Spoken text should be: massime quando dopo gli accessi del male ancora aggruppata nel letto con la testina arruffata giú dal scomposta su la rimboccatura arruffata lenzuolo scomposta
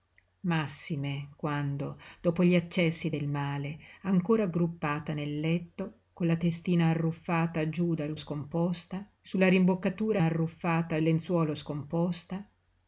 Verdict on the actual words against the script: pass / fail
pass